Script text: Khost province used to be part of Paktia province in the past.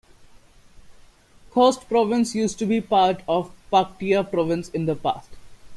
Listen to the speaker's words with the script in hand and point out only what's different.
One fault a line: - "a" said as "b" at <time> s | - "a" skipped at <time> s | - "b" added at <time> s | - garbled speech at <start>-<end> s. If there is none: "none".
none